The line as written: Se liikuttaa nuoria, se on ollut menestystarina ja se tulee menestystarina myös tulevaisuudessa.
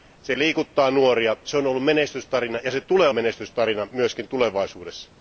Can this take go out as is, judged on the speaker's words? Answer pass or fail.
pass